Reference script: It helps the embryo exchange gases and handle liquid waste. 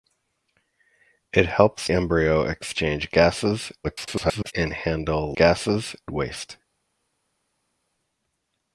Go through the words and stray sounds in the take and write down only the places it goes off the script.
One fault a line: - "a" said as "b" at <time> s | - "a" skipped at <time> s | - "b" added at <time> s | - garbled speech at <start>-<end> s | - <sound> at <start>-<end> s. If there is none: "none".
- "the" skipped at 1.9 s
- garbled speech at 3.8-4.5 s
- "liquid" said as "gases" at 5.3 s